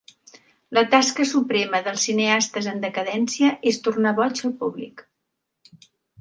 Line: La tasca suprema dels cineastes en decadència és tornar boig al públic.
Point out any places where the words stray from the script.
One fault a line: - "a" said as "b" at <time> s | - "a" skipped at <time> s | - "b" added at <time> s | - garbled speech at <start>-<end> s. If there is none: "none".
none